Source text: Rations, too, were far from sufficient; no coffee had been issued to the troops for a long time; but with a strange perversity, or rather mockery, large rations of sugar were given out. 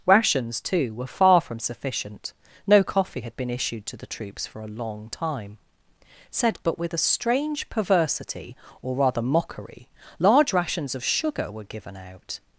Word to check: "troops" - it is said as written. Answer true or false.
true